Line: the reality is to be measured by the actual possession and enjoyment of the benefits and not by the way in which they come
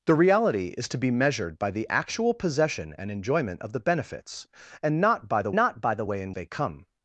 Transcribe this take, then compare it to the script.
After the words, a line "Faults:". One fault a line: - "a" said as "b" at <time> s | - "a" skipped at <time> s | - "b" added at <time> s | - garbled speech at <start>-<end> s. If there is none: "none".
the reality is to be measured by the actual possession and enjoyment of the benefits and not by the not by the way in they come
Faults:
- "not by the" added at 5.5 s
- "which" skipped at 6.3 s